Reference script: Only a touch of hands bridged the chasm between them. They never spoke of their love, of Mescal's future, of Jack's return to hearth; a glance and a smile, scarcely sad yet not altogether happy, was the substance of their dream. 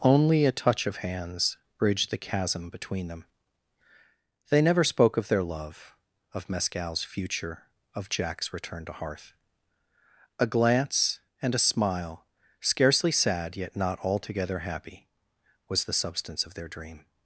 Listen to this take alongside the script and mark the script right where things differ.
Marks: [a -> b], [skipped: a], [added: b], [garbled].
Only a touch of hands bridged the chasm between them. They never spoke of their love, of Mescal's future, of Jack's return to hearth; a glance and a smile, scarcely sad yet not altogether happy, was the substance of their dream.